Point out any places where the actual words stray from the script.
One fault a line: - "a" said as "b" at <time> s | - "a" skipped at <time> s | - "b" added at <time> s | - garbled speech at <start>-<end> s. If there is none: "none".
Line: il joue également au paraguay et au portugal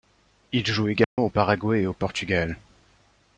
none